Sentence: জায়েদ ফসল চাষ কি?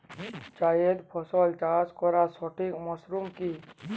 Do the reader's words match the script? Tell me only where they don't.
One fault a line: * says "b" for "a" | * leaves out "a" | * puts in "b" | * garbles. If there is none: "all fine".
* puts in "করার সঠিক মরশুম"